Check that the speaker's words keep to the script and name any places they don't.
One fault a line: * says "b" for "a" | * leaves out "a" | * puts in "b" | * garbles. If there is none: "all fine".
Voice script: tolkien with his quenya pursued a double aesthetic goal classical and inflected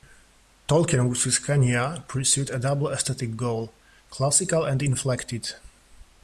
all fine